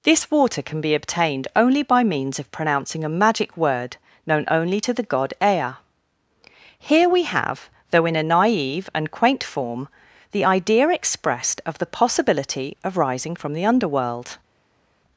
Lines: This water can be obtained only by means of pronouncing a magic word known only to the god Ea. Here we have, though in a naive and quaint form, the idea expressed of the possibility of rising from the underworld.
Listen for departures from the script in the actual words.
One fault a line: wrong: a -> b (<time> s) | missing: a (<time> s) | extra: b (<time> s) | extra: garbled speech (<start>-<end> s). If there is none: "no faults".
no faults